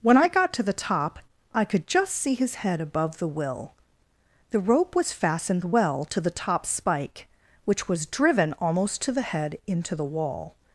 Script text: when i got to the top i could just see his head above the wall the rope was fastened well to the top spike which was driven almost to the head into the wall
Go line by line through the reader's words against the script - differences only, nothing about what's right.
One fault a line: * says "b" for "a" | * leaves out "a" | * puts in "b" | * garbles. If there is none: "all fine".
* says "will" for "wall"